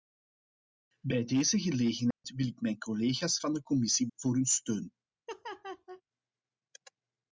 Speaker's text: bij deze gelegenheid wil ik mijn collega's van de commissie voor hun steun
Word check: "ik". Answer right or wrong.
right